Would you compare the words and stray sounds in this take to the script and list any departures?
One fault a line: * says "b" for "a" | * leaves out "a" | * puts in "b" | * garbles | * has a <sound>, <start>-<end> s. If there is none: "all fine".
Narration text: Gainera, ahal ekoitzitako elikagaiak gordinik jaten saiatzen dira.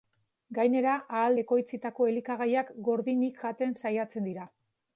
all fine